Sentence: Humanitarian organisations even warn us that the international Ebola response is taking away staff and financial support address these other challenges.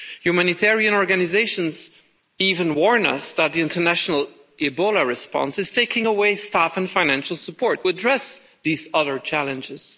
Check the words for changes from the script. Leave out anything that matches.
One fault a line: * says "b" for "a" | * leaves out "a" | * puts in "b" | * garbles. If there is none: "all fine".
all fine